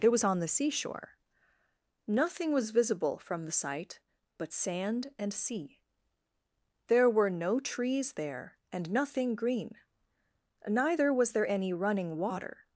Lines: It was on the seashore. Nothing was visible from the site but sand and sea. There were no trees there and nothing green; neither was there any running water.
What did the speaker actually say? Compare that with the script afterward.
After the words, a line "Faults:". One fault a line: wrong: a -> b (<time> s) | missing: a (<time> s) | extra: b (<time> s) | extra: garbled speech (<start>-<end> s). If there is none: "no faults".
It was on the seashore. Nothing was visible from the site but sand and sea. There were no trees there and nothing green; neither was there any running water.
Faults:
no faults